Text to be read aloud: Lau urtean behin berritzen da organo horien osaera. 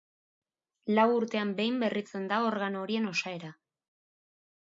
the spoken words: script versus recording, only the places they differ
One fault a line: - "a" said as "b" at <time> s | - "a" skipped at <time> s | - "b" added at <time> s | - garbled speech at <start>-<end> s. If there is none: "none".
none